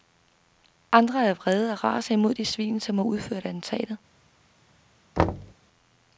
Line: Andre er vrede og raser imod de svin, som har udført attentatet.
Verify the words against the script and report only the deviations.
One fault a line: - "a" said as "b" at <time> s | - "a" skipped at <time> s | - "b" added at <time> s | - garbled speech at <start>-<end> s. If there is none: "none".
none